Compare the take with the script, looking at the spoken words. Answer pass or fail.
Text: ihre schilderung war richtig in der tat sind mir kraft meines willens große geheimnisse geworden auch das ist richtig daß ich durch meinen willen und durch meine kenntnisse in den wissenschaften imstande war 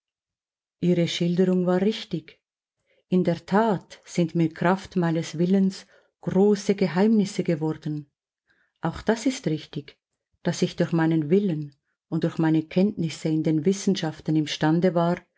pass